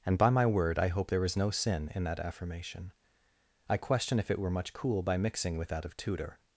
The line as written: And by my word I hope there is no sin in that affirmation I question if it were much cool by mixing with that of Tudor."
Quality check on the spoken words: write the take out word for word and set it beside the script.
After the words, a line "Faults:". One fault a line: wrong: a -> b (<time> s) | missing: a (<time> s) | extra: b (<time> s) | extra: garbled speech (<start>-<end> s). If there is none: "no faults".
And by my word I hope there is no sin in that affirmation I question if it were much cool by mixing with that of Tudor."
Faults:
no faults